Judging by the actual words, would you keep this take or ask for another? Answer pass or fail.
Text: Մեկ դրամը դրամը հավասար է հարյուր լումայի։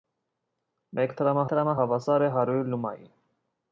pass